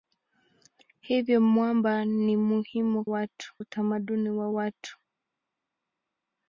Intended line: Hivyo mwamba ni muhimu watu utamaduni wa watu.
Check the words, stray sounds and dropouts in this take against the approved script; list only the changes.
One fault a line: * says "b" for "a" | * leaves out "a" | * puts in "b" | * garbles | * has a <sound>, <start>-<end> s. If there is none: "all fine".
all fine